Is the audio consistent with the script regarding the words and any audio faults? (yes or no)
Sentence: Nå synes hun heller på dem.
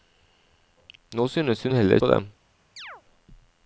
no